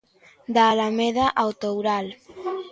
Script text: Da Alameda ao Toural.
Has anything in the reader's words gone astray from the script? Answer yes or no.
no